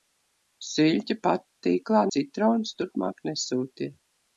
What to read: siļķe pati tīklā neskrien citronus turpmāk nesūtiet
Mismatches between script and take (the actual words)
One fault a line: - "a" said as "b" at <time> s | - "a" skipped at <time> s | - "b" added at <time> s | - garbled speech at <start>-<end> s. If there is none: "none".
- "neskrien" skipped at 2.0 s